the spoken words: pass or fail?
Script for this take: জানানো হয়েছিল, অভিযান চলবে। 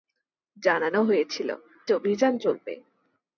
pass